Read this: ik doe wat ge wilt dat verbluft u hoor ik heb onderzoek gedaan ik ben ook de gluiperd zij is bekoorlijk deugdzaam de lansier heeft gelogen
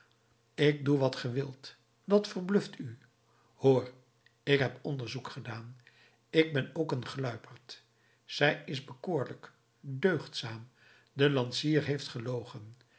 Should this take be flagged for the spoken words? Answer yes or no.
yes